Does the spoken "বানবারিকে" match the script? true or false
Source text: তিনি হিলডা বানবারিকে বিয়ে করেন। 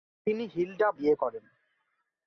false